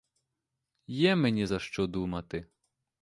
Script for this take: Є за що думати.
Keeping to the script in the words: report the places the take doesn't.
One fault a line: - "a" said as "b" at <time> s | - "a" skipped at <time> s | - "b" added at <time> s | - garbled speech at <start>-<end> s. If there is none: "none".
- "мені" added at 1.1 s